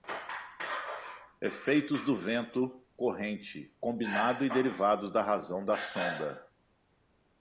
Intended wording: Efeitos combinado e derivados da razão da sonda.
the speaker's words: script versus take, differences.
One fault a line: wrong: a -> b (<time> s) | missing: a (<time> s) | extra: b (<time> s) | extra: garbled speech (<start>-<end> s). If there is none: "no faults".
extra: do vento corrente (2.0 s)